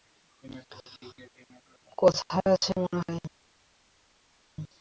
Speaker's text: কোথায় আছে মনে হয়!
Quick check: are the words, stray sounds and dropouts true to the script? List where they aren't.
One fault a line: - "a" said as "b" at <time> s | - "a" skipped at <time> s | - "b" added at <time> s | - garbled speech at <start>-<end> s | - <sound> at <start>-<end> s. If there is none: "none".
none